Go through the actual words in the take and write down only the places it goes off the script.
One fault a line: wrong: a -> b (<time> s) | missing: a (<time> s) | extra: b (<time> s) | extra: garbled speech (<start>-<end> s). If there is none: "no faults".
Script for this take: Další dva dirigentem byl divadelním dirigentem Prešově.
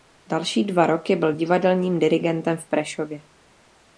wrong: dirigentem -> roky (0.8 s)
extra: v (2.6 s)